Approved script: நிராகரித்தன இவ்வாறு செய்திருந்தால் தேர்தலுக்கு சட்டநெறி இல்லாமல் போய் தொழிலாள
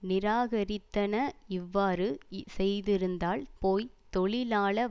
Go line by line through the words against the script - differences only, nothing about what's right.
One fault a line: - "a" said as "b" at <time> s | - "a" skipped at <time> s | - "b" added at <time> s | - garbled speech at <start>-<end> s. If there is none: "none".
- "தேர்தலுக்கு சட்டநெறி இல்லாமல்" skipped at 3.4 s